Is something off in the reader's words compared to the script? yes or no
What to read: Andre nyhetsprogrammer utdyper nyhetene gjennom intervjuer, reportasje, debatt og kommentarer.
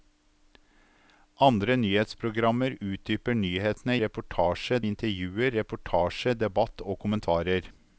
yes